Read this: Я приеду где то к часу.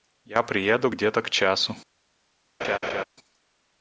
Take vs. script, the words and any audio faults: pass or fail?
fail